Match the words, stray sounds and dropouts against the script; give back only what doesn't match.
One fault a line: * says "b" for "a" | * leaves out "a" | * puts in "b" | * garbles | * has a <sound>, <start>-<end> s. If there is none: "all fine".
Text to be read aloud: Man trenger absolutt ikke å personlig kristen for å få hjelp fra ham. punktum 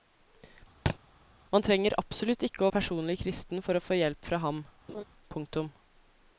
* has a thud, 0.9-1.0 s
* has a laugh, 4.9-5.0 s